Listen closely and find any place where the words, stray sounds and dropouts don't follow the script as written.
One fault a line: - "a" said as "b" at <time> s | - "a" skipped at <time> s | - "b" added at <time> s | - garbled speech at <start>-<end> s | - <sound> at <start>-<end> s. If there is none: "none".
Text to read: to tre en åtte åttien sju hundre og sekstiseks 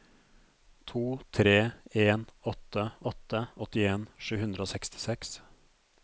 - "åtte" added at 3.1 s